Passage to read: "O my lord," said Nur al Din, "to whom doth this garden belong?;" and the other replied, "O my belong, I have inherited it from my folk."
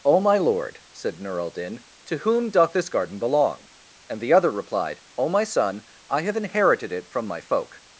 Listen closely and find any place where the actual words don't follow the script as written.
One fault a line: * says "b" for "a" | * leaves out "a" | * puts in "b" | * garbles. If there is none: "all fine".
* says "son" for "belong"